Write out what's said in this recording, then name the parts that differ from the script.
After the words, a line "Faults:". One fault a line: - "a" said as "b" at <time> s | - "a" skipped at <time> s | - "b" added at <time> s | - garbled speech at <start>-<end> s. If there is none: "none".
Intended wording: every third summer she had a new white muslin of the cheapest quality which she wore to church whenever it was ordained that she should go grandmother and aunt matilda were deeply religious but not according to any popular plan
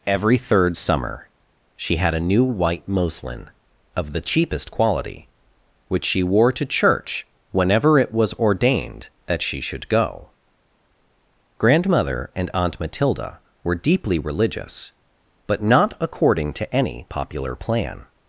every third summer she had a new white muslin of the cheapest quality which she wore to church whenever it was ordained that she should go grandmother and aunt matilda were deeply religious but not according to any popular plan
Faults:
none